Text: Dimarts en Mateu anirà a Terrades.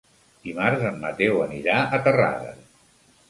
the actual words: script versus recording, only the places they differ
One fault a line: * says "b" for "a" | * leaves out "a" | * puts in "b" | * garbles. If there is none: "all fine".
all fine